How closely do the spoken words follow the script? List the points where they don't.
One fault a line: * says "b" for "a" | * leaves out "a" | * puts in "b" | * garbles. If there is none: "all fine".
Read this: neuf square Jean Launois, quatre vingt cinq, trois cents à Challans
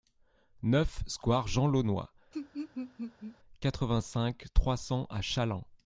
all fine